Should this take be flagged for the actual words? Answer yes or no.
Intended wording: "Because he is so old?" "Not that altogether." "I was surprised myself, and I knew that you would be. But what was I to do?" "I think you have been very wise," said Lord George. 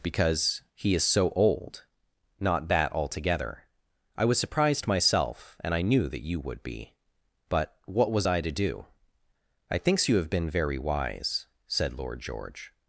yes